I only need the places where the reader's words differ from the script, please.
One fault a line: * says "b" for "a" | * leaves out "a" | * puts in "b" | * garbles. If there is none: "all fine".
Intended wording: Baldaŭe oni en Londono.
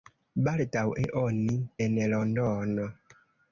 all fine